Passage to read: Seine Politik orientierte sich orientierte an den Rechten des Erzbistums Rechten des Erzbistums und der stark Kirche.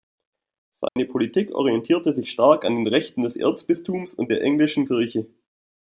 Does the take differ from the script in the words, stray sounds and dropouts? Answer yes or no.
yes